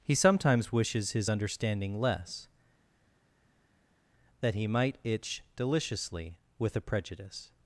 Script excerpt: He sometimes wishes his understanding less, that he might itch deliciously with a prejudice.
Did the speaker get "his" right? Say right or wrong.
right